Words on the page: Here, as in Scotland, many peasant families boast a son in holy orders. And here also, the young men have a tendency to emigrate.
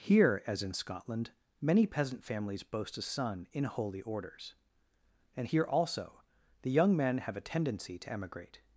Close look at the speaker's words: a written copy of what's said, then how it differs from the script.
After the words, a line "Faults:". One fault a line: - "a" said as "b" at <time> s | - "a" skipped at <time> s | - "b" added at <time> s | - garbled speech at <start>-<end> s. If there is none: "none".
Here, as in Scotland, many peasant families boast a son in holy orders. And here also, the young men have a tendency to emigrate.
Faults:
none